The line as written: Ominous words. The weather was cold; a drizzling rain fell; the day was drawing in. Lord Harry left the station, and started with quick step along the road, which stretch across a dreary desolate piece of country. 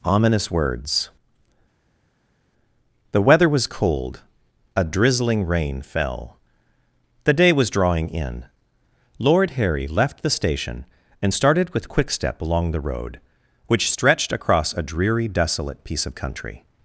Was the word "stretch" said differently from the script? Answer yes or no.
yes